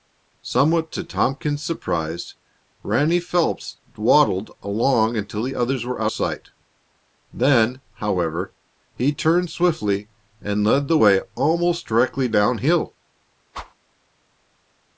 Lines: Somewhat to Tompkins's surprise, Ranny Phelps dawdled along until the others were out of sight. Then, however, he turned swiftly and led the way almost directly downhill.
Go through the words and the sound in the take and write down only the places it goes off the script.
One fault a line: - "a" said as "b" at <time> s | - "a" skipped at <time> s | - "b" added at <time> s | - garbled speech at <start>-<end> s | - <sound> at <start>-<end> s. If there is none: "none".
- "of" skipped at 6.1 s
- whoosh at 13.5-13.7 s